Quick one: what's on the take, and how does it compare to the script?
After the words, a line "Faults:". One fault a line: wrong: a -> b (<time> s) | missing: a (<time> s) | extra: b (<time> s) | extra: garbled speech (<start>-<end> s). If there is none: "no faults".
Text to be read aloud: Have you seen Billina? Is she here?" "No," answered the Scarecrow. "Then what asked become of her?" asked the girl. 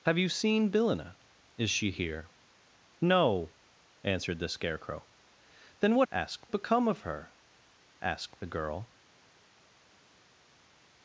Have you seen Billina? Is she here?" "No," answered the Scarecrow. "Then what asked become of her?" asked the girl.
Faults:
no faults